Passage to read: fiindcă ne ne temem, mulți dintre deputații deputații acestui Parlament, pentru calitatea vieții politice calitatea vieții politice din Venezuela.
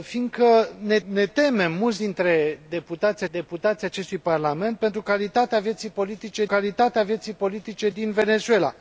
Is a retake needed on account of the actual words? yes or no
no